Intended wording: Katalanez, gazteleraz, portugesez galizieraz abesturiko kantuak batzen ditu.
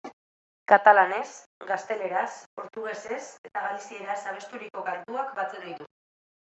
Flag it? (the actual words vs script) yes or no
yes